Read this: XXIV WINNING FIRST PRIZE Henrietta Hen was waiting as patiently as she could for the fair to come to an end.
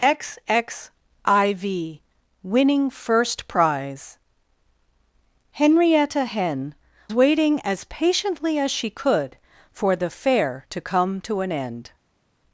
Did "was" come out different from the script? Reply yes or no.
yes